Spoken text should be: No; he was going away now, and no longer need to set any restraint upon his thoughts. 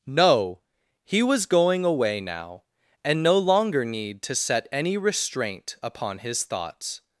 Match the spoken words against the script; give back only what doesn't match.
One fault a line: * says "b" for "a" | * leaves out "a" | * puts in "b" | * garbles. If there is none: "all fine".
all fine